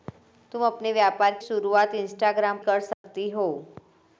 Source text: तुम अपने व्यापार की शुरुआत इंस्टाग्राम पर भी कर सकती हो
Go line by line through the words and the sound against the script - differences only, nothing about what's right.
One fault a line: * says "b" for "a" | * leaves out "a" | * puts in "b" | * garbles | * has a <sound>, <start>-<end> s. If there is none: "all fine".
* leaves out "की"
* leaves out "पर भी"
* has a dropout, 2.9-3.0 s